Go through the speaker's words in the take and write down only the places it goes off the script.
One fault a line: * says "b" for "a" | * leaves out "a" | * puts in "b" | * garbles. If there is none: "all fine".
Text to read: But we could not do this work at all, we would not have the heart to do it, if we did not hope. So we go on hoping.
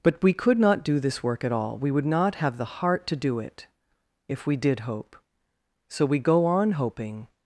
* leaves out "not"